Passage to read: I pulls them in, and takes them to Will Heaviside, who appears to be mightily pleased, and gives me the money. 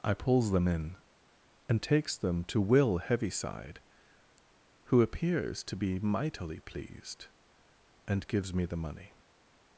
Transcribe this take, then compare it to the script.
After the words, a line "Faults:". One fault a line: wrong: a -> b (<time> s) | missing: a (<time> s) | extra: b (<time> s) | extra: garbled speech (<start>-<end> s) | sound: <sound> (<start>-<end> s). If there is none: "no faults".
I pulls them in, and takes them to Will Heaviside, who appears to be mightily pleased, and gives me the money.
Faults:
no faults